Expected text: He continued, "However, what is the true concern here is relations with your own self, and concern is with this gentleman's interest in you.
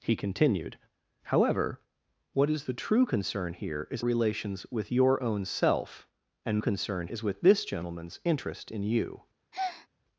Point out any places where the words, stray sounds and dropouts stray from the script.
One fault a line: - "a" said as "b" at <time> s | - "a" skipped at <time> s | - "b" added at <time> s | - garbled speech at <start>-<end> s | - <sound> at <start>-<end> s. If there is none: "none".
- breath at 9.5-9.9 s